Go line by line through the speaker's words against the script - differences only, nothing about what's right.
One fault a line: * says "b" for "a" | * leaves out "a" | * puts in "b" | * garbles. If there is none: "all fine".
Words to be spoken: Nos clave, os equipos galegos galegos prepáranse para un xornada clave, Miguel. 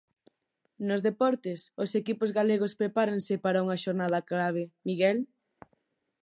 * says "deportes" for "clave"
* leaves out "galegos"
* says "unha" for "un"